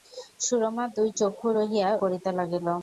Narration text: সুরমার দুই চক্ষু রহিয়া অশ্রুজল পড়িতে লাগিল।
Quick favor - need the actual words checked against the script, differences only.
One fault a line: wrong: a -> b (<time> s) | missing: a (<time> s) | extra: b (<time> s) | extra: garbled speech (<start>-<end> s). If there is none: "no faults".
missing: অশ্রুজল (1.9 s)